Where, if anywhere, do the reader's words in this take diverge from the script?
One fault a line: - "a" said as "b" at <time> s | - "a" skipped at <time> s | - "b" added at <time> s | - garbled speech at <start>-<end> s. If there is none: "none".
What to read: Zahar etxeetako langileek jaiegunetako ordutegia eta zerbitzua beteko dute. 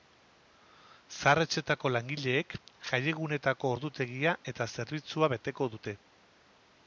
none